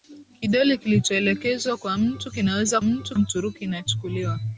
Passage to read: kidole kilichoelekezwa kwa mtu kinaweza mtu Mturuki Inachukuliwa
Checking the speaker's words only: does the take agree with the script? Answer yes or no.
yes